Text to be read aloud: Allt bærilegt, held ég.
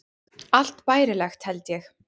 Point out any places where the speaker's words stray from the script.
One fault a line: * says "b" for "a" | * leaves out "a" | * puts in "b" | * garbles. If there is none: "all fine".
all fine